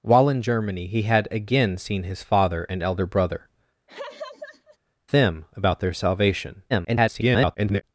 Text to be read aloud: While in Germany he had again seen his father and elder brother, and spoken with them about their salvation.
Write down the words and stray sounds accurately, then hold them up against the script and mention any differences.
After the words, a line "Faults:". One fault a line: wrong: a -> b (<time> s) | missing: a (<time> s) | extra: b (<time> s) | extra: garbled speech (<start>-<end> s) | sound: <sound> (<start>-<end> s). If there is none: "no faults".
While in Germany he had again seen his father and elder brother, them about their salvation. [garbled]
Faults:
missing: and spoken with (3.5 s)
sound: laugh (3.9-4.8 s)
extra: garbled speech (6.7-7.8 s)